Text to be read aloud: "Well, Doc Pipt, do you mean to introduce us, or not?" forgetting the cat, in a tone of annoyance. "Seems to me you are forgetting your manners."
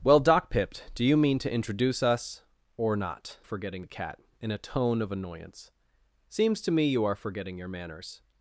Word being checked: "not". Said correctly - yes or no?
yes